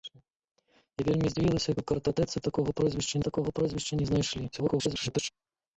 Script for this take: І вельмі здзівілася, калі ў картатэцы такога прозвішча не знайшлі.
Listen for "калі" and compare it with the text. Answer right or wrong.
wrong